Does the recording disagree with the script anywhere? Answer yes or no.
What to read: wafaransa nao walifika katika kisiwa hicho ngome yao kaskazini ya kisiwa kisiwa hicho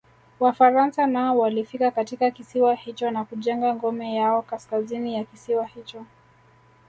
yes